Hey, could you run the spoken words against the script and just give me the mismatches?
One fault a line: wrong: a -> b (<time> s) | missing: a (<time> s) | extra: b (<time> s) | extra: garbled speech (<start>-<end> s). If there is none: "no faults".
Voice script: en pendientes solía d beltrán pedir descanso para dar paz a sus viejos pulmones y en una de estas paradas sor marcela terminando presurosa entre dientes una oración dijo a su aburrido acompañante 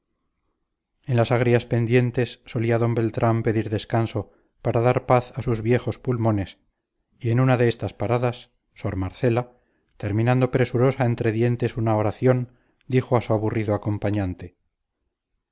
extra: las agrias (1.1 s)